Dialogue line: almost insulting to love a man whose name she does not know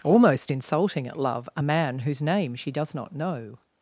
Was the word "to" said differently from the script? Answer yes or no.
yes